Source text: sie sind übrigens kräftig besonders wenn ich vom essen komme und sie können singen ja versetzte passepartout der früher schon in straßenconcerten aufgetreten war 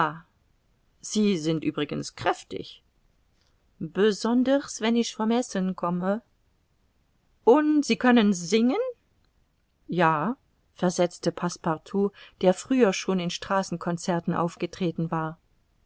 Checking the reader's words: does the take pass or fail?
pass